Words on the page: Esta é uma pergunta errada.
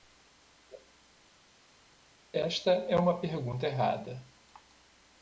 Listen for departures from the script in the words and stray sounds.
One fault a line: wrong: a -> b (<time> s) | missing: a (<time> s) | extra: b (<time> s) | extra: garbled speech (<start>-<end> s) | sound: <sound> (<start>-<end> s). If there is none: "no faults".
no faults